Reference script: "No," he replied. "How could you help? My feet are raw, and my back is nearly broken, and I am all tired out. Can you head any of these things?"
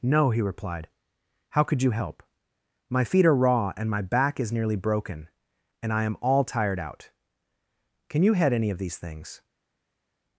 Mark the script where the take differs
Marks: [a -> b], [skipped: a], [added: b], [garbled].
"No," he replied. "How could you help? My feet are raw, and my back is nearly broken, and I am all tired out. Can you head any of these things?"